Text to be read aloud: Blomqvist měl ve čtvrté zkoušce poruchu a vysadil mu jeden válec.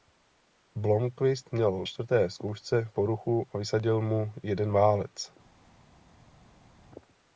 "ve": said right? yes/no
no